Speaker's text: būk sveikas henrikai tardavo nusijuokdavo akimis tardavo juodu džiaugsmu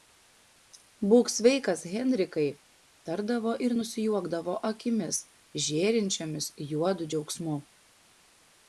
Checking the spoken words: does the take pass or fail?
fail